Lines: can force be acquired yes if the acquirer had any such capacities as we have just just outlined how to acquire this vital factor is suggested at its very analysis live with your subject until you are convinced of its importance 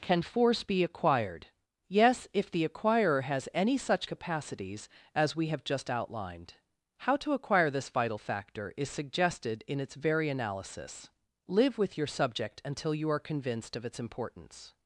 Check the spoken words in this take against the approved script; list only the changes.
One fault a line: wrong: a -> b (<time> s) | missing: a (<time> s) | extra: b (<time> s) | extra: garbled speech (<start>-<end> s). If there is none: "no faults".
wrong: had -> has (3.2 s)
missing: just (5.9 s)
wrong: at -> in (9.7 s)